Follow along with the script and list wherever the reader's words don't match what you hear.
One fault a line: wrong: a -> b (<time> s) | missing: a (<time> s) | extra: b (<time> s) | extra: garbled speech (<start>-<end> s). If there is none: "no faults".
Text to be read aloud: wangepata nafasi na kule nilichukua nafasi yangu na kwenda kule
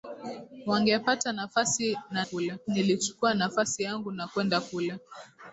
no faults